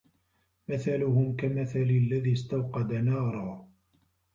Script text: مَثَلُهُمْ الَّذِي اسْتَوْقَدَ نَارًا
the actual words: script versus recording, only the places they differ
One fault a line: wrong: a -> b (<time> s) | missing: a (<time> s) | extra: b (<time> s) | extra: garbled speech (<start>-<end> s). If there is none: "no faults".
extra: كَمَثَلِ (1.4 s)